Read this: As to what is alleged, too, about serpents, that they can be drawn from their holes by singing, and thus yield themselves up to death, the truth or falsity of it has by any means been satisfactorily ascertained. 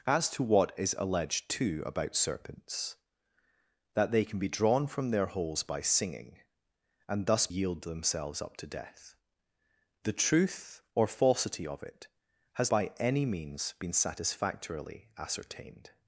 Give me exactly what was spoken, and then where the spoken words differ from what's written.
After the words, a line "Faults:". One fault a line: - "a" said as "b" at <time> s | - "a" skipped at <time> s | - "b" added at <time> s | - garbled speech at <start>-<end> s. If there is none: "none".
As to what is alleged, too, about serpents, that they can be drawn from their holes by singing, and thus yield themselves up to death, the truth or falsity of it has by any means been satisfactorily ascertained.
Faults:
none